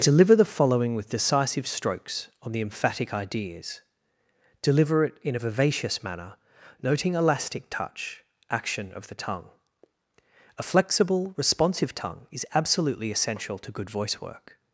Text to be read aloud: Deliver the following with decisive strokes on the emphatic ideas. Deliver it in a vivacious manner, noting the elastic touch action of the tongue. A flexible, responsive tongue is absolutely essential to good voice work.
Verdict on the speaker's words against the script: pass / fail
fail